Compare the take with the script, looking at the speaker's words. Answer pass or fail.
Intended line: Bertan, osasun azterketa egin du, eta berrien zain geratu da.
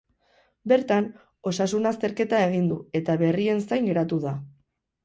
pass